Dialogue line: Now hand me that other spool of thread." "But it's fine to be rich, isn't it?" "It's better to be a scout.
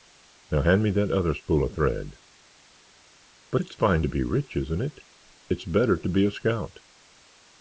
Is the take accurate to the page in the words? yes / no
yes